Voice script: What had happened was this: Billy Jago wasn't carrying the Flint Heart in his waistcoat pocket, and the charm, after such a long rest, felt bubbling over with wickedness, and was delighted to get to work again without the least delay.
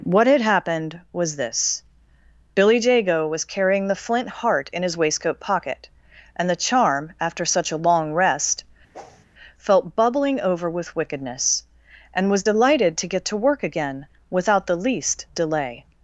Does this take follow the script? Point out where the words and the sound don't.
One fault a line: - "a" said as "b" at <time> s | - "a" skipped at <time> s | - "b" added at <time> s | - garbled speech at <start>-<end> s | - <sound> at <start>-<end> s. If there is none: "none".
- "wasn't" said as "was" at 3.3 s
- whoosh at 8.9-9.3 s